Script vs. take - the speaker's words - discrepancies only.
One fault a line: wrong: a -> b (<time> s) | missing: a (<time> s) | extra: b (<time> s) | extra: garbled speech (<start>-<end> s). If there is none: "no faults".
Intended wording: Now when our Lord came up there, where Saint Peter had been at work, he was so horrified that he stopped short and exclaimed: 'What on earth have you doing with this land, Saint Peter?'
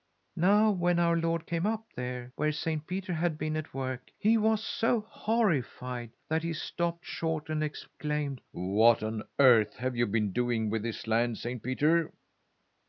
extra: been (10.1 s)